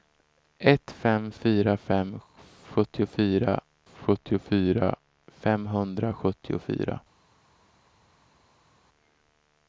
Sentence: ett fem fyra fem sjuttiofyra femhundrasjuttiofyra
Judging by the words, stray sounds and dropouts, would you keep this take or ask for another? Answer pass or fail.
fail